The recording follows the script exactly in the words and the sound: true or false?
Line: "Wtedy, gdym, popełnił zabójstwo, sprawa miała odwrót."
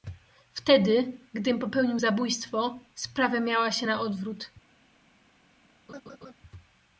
false